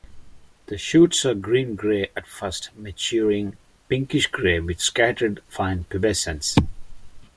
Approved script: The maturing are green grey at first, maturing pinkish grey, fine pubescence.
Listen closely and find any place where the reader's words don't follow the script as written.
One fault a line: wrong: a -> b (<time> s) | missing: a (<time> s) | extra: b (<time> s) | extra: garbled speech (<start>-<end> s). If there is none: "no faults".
wrong: maturing -> shoots (0.8 s)
extra: with scattered (4.6 s)